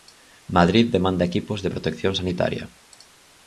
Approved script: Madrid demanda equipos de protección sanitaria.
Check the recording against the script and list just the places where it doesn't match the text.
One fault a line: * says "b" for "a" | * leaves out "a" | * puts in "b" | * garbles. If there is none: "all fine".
all fine